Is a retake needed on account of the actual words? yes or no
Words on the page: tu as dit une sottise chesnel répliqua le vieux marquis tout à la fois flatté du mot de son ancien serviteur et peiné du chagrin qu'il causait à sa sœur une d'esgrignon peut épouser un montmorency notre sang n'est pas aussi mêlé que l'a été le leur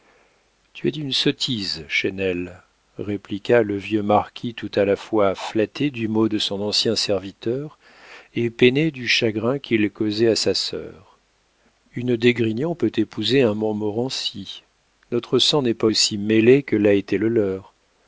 no